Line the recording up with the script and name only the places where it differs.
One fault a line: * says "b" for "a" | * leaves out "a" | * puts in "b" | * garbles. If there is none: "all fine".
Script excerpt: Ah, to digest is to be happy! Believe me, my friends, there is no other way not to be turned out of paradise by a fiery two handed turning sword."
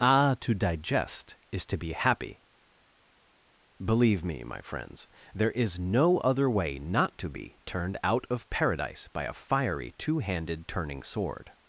all fine